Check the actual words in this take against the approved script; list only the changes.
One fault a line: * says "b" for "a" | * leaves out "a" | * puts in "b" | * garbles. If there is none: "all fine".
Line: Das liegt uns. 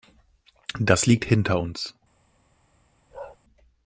* puts in "hinter"